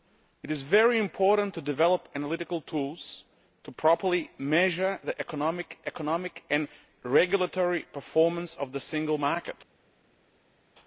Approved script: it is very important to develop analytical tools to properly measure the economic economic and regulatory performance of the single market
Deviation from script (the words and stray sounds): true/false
false